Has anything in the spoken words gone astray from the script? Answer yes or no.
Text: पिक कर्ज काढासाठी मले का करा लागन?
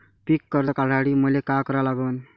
no